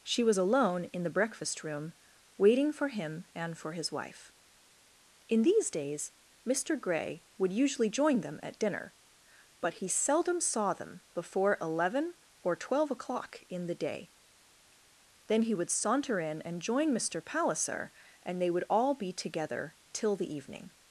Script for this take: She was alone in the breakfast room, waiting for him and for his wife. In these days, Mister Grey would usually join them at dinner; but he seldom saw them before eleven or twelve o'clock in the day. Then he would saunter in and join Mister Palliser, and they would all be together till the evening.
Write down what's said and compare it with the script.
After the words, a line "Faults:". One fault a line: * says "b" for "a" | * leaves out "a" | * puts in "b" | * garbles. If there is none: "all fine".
She was alone in the breakfast room, waiting for him and for his wife. In these days, Mister Grey would usually join them at dinner; but he seldom saw them before eleven or twelve o'clock in the day. Then he would saunter in and join Mister Palliser, and they would all be together till the evening.
Faults:
all fine